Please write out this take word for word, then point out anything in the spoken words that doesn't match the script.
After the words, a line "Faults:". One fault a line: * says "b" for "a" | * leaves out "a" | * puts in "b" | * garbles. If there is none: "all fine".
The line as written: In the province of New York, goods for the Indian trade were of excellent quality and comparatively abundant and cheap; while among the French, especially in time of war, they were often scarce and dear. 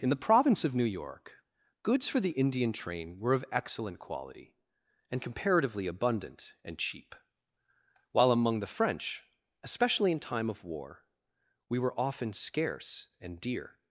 In the province of New York, goods for the Indian train were of excellent quality and comparatively abundant and cheap; while among the French, especially in time of war, we were often scarce and dear.
Faults:
* says "train" for "trade"
* says "we" for "they"